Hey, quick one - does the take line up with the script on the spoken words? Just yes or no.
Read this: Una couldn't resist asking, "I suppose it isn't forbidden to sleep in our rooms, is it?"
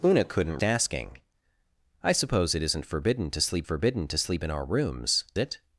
no